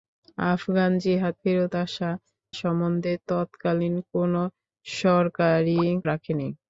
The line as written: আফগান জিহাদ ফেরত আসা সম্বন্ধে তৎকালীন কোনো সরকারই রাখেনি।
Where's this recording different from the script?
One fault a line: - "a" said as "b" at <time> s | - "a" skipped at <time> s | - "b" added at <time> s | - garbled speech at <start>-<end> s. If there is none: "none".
none